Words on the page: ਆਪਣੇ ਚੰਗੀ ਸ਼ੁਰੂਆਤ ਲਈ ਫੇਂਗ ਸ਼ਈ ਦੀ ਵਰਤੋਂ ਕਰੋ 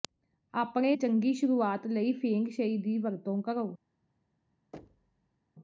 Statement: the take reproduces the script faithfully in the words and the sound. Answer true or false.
false